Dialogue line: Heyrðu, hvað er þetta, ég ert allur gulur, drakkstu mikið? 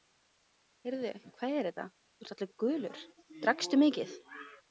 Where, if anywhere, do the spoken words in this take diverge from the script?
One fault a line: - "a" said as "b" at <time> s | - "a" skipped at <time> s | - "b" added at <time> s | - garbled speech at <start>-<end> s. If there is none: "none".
- "ég" said as "þú" at 2.2 s